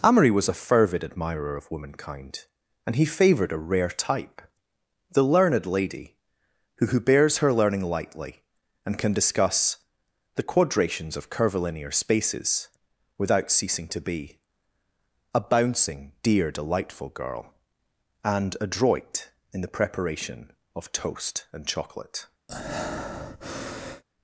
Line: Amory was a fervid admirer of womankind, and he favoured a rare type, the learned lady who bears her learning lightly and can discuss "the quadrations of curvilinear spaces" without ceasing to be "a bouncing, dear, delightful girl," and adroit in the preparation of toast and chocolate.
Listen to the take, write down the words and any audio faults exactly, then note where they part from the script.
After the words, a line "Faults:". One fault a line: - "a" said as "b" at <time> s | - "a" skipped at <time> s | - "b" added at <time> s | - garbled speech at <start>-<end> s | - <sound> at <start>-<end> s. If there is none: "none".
Amory was a fervid admirer of womankind, and he favoured a rare type, the learned lady who who bears her learning lightly and can discuss "the quadrations of curvilinear spaces" without ceasing to be "a bouncing, dear, delightful girl," and adroit in the preparation of toast and chocolate.
Faults:
- "who" added at 6.9 s
- breath at 22.5-24.0 s